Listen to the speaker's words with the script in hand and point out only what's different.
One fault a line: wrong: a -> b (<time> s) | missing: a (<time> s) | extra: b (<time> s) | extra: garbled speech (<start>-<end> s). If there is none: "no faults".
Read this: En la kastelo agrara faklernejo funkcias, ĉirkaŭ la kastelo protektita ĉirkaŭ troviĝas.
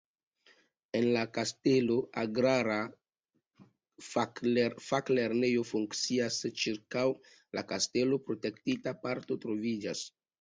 wrong: ĉirkaŭ -> parko (9.0 s)